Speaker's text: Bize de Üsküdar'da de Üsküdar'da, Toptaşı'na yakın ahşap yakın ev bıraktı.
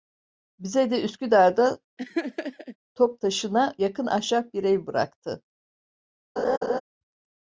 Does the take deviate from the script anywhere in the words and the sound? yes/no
yes